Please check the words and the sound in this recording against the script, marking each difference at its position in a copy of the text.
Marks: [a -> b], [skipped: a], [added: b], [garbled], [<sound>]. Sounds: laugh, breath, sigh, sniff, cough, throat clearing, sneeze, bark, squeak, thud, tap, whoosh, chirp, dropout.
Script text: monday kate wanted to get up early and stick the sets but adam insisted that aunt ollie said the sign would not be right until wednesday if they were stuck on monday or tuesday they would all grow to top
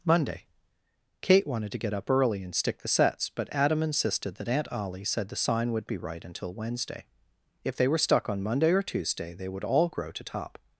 monday kate wanted to get up early and stick the sets but adam insisted that aunt ollie said the sign would [skipped: not] be right until wednesday if they were stuck on monday or tuesday they would all grow to top